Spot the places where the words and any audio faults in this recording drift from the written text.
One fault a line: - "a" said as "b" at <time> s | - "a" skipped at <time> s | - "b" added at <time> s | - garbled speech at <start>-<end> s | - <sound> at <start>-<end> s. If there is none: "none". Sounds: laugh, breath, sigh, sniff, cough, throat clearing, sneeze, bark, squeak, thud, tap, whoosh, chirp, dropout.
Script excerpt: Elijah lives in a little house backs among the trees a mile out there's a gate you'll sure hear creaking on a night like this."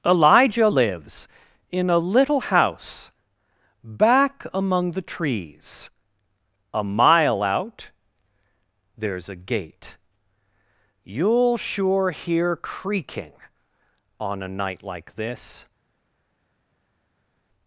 - "backs" said as "back" at 3.8 s